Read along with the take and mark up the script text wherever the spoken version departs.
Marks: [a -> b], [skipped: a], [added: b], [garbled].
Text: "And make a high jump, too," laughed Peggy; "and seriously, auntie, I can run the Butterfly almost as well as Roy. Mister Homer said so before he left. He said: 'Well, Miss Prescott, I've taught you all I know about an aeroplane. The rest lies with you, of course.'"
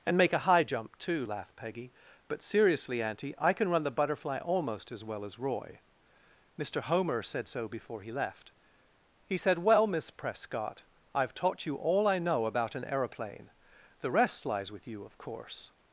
"And make a high jump, too," laughed Peggy; ["and -> but] seriously, auntie, I can run the Butterfly almost as well as Roy. Mister Homer said so before he left. He said: 'Well, Miss Prescott, I've taught you all I know about an aeroplane. The rest lies with you, of course.'"